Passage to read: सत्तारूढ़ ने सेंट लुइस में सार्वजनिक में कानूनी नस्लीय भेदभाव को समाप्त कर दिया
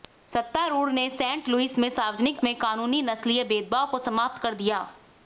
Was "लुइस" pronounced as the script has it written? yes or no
yes